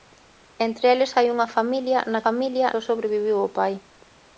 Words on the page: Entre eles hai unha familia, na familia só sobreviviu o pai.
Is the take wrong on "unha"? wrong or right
right